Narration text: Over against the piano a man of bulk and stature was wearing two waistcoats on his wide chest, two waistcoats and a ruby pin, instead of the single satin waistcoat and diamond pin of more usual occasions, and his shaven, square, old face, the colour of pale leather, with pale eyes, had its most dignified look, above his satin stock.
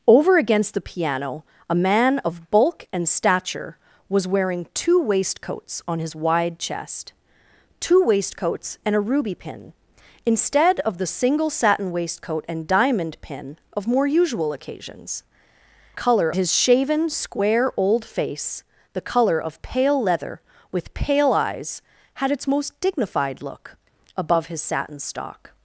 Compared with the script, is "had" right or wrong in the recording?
right